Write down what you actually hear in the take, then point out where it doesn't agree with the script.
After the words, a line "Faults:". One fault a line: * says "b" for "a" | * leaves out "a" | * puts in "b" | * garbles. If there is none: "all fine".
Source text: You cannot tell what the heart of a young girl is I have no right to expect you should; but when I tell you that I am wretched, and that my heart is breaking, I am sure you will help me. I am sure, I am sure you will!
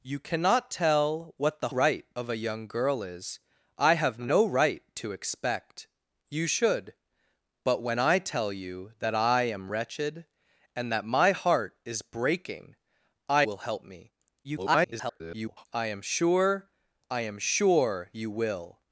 You cannot tell what the right of a young girl is I have no right to expect you should; but when I tell you that I am wretched, and that my heart is breaking, I will help me. [garbled] I am sure, I am sure you will!
Faults:
* says "right" for "heart"
* leaves out "am sure you"
* garbles